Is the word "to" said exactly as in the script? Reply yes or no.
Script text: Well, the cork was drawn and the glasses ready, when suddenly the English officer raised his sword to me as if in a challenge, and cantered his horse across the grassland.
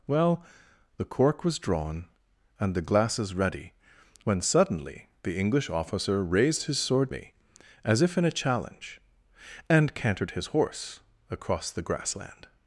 no